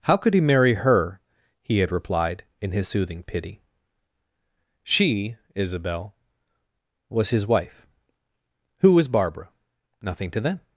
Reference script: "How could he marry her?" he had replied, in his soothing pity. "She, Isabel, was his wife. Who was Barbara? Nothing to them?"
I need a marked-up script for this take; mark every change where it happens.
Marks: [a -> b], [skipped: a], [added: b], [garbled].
"How could he marry her?" he had replied, in his soothing pity. "She, Isabel, was his wife. Who was Barbara? Nothing to them?"